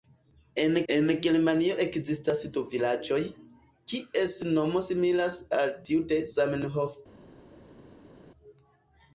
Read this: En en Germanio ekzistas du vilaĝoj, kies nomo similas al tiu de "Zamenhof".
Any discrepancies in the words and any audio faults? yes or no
no